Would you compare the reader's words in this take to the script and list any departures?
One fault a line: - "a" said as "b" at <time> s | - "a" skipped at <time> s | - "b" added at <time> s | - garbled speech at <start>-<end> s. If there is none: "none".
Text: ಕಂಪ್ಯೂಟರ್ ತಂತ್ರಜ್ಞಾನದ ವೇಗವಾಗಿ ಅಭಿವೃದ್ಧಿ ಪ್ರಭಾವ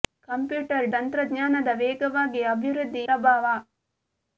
none